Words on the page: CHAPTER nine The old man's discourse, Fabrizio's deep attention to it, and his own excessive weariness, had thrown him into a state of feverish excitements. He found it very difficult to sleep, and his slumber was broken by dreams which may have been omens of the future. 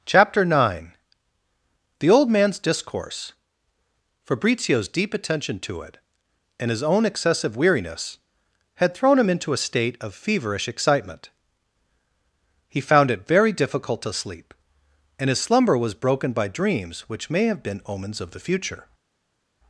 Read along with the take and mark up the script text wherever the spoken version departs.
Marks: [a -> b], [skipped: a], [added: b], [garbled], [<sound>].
CHAPTER nine The old man's discourse, Fabrizio's deep attention to it, and his own excessive weariness, had thrown him into a state of feverish [excitements. -> excitement] He found it very difficult to sleep, and his slumber was broken by dreams which may have been omens of the future.